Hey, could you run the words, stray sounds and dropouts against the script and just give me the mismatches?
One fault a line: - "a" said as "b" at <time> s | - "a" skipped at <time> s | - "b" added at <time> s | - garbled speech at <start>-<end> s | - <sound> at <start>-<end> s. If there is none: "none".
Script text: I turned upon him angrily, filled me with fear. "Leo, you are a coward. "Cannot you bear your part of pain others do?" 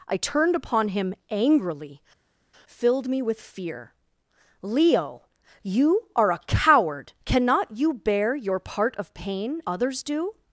none